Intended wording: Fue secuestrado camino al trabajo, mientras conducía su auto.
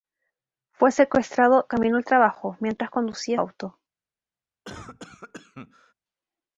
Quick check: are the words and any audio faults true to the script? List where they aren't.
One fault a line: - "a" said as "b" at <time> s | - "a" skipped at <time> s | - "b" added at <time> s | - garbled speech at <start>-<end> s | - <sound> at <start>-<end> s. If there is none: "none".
- "su" skipped at 3.4 s
- cough at 4.6-5.9 s